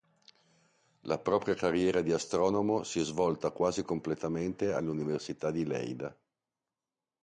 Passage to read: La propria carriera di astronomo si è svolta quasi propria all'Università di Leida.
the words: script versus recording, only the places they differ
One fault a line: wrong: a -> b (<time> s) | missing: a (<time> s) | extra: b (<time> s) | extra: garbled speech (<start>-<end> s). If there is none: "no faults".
wrong: propria -> completamente (3.8 s)